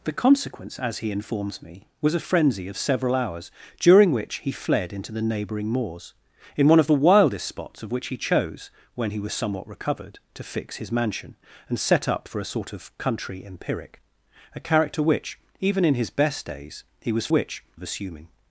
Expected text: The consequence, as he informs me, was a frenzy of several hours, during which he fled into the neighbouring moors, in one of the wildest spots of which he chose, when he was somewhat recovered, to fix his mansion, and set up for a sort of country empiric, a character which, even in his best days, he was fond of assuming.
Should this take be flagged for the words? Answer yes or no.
yes